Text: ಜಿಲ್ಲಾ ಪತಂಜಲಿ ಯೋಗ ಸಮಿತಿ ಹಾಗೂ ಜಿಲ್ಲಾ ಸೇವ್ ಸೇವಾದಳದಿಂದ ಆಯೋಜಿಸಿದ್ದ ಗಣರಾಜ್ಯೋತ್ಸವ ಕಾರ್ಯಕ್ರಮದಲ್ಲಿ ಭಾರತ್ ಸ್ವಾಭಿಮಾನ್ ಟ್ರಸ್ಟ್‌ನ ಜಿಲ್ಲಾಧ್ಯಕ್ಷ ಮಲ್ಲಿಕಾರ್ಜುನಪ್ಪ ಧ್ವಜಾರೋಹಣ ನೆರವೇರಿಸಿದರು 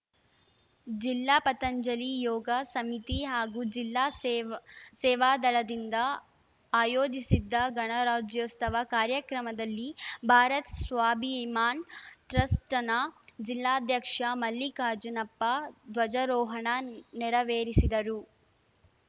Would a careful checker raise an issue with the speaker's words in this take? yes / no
no